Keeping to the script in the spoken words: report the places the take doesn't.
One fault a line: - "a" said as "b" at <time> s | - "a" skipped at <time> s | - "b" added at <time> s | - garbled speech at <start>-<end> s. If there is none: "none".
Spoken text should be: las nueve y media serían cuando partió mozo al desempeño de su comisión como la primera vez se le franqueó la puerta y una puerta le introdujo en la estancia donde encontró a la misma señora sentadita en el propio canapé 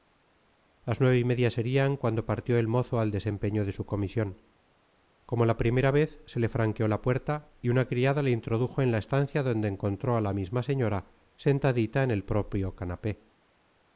- "el" added at 2.6 s
- "puerta" said as "criada" at 7.9 s